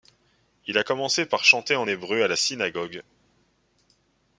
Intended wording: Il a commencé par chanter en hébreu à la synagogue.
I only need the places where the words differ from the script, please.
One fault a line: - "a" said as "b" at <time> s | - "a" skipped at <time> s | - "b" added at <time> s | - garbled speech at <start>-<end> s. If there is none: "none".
none